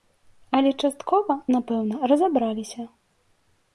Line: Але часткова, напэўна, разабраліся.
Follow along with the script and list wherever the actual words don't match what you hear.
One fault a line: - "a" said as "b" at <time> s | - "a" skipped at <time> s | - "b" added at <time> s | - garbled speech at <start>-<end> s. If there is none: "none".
none